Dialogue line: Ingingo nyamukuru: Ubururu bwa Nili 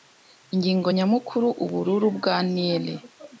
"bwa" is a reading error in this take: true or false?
false